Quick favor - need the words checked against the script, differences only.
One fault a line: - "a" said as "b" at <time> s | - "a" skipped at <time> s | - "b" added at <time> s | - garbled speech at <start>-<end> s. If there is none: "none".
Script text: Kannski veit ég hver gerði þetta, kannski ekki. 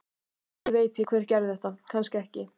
none